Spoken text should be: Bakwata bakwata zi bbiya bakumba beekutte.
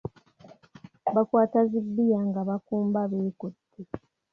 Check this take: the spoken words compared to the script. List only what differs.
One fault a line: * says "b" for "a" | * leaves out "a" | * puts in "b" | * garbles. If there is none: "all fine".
* leaves out "bakwata"
* puts in "nga"